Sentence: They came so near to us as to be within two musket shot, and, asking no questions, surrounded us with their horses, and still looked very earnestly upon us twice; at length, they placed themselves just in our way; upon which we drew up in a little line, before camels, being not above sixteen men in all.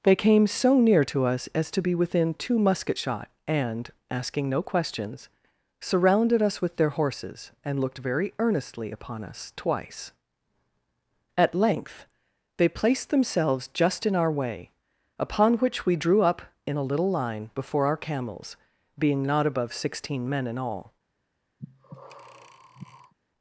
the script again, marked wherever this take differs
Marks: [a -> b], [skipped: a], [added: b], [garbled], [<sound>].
They came so near to us as to be within two musket shot, and, asking no questions, surrounded us with their horses, and [skipped: still] looked very earnestly upon us twice; at length, they placed themselves just in our way; upon which we drew up in a little line, before [added: our] camels, being not above sixteen men in all. [breath]